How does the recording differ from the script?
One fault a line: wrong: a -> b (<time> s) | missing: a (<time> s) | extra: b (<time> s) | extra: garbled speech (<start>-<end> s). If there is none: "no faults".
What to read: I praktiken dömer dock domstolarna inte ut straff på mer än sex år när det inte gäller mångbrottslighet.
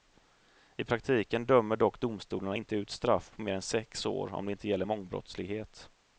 wrong: när -> om (4.3 s)